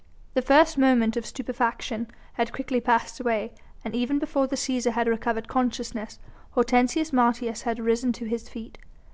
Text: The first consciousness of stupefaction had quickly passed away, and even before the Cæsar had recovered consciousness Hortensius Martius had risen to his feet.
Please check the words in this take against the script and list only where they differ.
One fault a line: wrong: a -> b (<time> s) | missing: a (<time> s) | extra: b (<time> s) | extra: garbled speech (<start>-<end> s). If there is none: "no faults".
wrong: consciousness -> moment (0.8 s)